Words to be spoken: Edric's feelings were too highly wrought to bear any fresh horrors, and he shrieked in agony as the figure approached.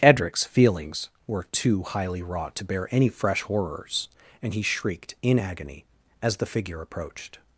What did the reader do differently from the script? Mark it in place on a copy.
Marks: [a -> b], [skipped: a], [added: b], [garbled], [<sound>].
Edric's feelings were too highly wrought to bear any fresh horrors, and he shrieked in agony as the figure approached.